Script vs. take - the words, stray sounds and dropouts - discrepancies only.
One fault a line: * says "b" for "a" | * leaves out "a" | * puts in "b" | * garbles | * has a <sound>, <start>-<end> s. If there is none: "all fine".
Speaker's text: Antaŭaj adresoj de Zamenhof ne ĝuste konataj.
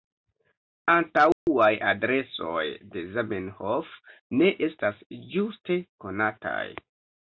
* has a dropout, 1.3-1.5 s
* puts in "estas"